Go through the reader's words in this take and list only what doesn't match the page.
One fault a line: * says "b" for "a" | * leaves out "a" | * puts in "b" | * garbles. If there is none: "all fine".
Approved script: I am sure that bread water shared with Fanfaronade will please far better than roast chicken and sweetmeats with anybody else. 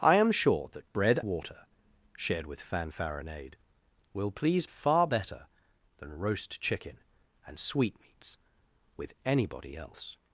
all fine